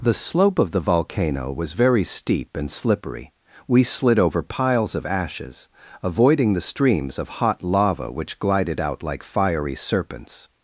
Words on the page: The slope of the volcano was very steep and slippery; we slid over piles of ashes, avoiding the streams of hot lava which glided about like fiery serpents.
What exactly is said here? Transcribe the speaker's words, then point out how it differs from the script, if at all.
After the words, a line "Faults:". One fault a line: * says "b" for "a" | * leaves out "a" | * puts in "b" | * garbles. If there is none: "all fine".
The slope of the volcano was very steep and slippery; we slid over piles of ashes, avoiding the streams of hot lava which glided out like fiery serpents.
Faults:
* says "out" for "about"